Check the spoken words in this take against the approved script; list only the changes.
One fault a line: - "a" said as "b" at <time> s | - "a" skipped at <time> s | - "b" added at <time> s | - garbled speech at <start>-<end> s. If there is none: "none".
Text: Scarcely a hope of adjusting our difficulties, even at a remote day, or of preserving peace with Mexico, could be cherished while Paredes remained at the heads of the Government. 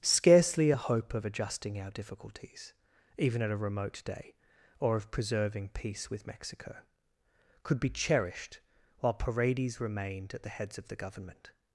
none